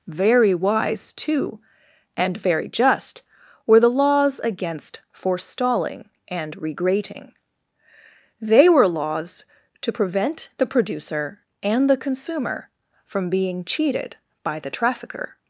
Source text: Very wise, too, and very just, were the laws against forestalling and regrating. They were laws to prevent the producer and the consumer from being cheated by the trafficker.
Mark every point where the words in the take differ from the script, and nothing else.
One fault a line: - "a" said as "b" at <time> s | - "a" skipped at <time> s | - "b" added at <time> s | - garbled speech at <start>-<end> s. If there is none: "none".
none